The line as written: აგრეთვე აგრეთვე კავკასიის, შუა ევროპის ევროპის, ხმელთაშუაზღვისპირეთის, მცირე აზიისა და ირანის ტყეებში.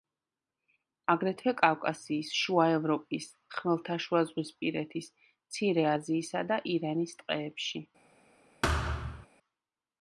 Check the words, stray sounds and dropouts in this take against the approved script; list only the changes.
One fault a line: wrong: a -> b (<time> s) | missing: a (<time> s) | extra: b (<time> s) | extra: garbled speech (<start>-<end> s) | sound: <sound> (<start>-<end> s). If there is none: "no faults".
missing: აგრეთვე (1.5 s)
missing: ევროპის (3.3 s)
sound: thud (8.6-9.3 s)